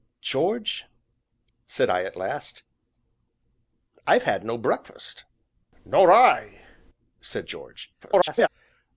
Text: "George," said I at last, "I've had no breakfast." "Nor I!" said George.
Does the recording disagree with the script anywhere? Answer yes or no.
yes